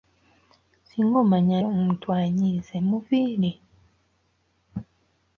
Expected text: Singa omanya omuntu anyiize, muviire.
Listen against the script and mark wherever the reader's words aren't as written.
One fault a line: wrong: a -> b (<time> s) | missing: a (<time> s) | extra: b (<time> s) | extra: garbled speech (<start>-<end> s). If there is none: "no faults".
no faults